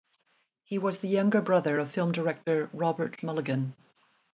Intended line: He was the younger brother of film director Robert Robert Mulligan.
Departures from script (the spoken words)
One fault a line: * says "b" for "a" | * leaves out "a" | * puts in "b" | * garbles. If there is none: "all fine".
* leaves out "Robert"